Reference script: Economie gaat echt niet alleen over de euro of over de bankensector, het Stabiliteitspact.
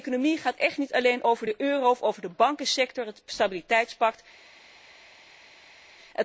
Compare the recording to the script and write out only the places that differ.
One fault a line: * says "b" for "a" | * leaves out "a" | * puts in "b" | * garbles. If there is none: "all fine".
all fine